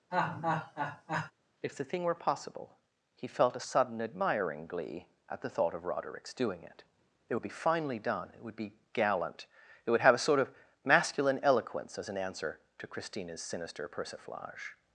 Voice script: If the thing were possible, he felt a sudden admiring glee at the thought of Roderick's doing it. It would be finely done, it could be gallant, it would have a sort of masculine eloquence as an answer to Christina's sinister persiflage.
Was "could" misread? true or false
true